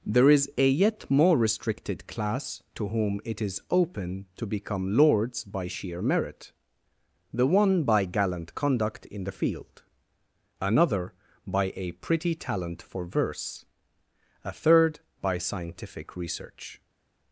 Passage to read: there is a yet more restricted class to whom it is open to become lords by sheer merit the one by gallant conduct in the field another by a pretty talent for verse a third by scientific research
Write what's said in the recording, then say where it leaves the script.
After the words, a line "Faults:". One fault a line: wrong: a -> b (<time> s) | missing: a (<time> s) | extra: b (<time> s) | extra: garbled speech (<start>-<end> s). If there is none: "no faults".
there is a yet more restricted class to whom it is open to become lords by sheer merit the one by gallant conduct in the field another by a pretty talent for verse a third by scientific research
Faults:
no faults